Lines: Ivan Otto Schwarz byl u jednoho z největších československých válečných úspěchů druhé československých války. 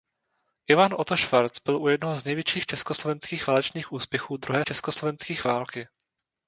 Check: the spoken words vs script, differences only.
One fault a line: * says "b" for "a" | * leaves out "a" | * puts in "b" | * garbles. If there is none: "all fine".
all fine